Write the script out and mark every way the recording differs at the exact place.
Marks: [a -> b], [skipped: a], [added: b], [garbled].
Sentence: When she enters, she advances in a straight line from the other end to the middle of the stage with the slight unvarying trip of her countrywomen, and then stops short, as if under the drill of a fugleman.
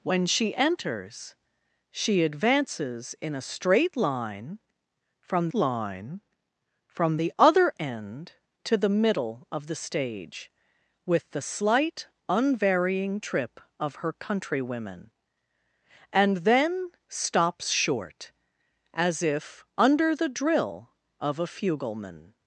When she enters, she advances in a straight line from [added: line from] the other end to the middle of the stage with the slight unvarying trip of her countrywomen, and then stops short, as if under the drill of a fugleman.